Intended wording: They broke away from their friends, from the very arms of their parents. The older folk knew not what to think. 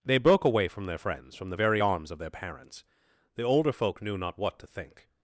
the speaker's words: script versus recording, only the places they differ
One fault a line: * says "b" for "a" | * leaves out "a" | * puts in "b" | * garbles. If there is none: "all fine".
all fine